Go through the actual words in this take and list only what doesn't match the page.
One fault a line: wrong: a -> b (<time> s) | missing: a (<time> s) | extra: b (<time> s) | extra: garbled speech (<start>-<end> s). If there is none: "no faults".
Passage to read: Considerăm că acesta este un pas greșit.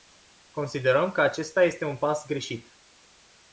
no faults